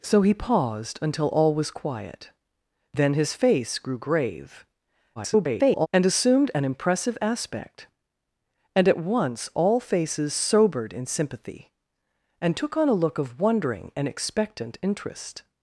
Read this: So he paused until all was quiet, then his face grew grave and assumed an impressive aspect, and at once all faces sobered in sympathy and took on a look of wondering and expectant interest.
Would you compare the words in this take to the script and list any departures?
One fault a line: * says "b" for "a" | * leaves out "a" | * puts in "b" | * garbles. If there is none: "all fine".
* garbles